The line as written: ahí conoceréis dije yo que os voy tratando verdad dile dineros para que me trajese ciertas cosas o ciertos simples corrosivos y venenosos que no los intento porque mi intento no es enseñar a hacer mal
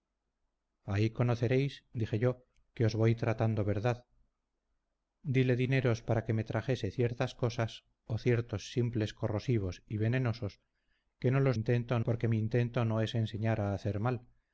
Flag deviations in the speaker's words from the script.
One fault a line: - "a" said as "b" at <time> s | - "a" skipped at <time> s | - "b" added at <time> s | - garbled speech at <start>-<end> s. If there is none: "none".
none